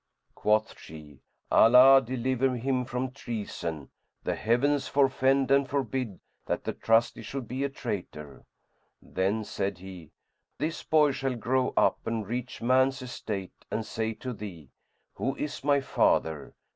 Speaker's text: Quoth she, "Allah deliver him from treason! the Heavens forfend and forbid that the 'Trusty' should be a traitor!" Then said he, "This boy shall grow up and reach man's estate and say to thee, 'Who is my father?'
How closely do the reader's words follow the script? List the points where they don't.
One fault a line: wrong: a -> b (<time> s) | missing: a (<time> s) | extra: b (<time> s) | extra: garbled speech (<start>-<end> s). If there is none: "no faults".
no faults